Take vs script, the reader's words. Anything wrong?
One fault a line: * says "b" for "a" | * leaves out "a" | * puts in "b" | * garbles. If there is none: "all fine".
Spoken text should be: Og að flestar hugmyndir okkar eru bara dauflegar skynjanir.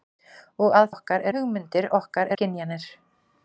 * says "okkar" for "flestar"
* leaves out "eru bara dauflegar"